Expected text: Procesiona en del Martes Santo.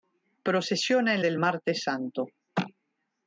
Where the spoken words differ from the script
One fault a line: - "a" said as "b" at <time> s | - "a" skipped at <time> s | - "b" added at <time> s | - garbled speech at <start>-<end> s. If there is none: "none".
none